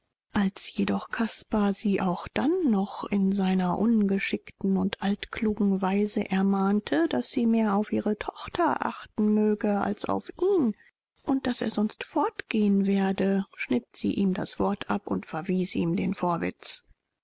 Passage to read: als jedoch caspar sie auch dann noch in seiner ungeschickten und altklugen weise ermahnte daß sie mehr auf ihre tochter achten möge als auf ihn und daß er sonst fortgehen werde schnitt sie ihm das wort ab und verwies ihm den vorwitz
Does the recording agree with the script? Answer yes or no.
yes